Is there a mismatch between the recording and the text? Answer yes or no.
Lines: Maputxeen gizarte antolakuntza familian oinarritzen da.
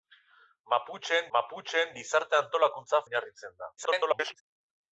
yes